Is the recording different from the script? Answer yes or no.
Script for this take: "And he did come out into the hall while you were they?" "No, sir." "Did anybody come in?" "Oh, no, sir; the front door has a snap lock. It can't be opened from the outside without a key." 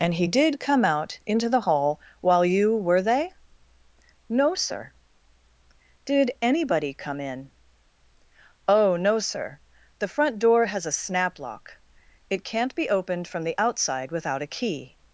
no